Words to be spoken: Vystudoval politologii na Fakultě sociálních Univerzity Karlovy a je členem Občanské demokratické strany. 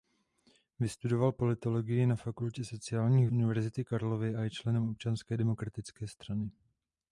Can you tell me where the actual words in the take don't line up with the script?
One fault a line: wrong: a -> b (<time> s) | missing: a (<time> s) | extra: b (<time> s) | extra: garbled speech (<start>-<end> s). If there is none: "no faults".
no faults